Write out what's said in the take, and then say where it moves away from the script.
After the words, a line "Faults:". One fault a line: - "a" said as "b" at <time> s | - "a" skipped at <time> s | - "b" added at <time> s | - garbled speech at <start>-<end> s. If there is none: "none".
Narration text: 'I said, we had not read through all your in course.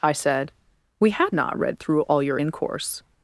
'I said, we had not read through all your in course.
Faults:
none